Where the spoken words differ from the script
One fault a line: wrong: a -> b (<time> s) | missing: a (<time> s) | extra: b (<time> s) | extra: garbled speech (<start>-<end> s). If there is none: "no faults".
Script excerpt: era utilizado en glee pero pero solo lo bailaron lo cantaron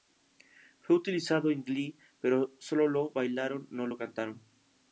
wrong: era -> fue (0.8 s)
missing: pero (2.5 s)
extra: no (3.7 s)